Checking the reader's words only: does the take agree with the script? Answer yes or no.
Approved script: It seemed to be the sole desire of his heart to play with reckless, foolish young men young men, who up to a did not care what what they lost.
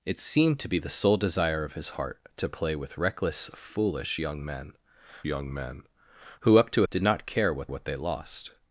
yes